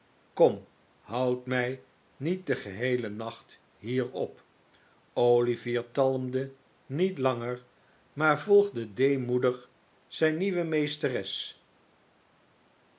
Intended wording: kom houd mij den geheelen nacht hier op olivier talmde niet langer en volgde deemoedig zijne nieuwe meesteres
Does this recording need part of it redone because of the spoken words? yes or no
yes